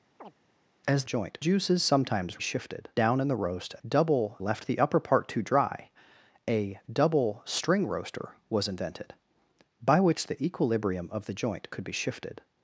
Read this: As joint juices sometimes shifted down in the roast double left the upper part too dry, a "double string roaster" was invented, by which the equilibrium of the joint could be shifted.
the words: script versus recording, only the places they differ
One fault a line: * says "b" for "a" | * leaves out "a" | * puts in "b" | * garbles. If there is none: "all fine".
all fine